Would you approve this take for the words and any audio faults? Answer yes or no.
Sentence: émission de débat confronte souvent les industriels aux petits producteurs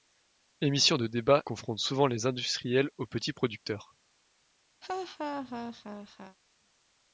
no